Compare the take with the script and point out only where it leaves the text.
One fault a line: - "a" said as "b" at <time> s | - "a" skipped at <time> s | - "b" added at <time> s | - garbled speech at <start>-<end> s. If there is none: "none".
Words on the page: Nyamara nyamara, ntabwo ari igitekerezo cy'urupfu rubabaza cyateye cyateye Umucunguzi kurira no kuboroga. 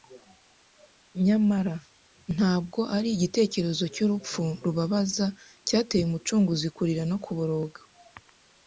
- "nyamara" skipped at 1.8 s
- "cyateye" skipped at 6.0 s